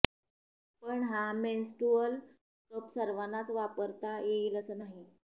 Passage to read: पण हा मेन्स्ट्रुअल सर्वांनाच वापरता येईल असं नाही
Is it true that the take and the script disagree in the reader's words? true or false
true